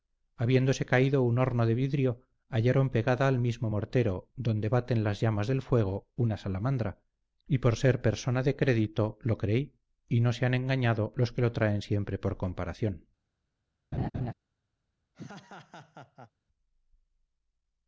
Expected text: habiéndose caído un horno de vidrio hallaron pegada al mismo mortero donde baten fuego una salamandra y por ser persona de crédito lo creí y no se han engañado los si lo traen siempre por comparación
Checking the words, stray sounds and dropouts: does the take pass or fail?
fail